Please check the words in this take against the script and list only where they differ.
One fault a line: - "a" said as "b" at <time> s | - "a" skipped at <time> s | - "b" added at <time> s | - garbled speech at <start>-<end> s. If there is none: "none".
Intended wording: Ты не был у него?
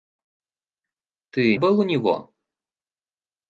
- "не" skipped at 1.6 s